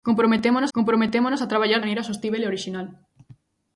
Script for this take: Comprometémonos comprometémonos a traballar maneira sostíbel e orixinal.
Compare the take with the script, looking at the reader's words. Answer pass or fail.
pass